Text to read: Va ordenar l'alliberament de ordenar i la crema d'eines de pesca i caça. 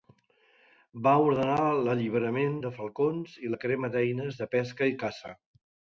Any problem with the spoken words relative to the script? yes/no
yes